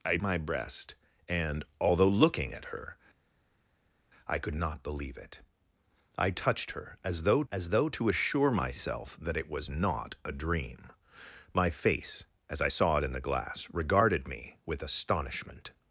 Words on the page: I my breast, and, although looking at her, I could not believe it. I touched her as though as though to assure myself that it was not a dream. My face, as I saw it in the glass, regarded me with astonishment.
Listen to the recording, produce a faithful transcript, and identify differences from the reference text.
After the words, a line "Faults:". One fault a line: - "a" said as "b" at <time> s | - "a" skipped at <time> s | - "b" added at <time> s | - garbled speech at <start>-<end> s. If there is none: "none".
I my breast, and, although looking at her, I could not believe it. I touched her as though as though to assure myself that it was not a dream. My face, as I saw it in the glass, regarded me with astonishment.
Faults:
none